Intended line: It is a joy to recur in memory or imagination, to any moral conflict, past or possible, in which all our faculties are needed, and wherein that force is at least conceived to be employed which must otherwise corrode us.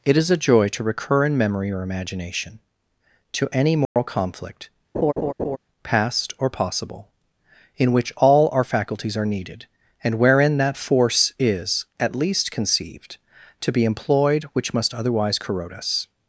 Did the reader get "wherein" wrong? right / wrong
right